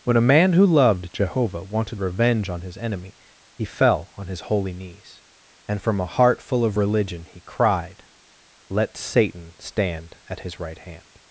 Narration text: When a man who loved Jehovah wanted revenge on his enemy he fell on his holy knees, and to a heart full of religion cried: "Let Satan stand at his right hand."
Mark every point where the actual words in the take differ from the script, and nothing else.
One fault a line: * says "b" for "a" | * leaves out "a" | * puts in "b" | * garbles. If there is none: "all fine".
* says "from" for "to"
* puts in "he"